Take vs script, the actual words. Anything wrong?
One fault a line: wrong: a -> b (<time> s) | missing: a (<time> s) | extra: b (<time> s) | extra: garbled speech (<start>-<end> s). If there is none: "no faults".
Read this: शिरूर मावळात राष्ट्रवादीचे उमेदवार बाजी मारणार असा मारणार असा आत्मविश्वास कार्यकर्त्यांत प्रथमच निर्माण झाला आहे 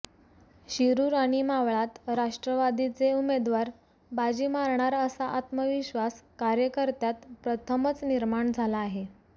extra: आणि (1.1 s)
missing: मारणार असा (5.2 s)